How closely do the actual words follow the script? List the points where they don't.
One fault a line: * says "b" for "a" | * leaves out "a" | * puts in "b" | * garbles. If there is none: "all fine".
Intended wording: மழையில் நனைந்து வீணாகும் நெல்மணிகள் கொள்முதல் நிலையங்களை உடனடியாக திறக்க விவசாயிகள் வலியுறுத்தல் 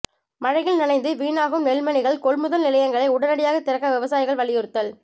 all fine